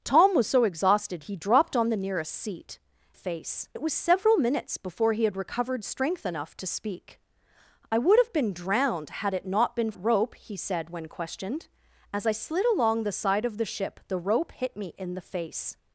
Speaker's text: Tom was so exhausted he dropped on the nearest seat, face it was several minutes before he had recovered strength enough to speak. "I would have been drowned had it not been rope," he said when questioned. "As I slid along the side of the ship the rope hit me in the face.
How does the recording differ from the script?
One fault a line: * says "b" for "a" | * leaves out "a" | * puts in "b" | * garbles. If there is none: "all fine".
all fine